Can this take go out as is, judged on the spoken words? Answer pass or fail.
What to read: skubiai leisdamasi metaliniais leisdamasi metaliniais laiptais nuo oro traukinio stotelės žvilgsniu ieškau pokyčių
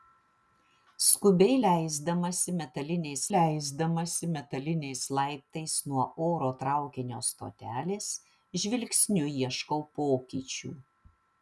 pass